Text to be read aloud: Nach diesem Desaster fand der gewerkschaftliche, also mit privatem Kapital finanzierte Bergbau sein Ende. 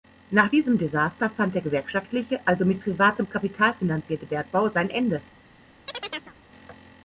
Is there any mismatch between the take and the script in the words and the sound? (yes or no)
yes